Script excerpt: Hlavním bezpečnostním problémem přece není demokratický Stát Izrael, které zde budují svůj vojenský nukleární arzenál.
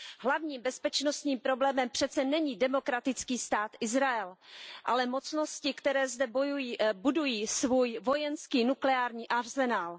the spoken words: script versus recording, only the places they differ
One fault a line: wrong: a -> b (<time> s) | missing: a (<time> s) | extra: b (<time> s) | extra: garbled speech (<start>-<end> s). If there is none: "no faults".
extra: ale mocnosti (4.8 s)